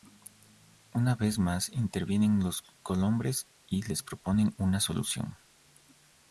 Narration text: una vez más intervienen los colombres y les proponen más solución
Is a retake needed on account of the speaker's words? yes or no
yes